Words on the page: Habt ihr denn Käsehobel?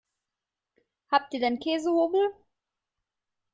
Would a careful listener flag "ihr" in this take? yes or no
no